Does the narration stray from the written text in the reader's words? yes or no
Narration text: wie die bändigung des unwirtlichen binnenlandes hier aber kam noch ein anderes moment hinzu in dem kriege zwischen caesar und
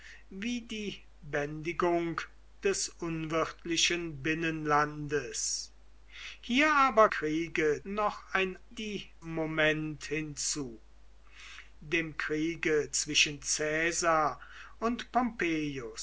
yes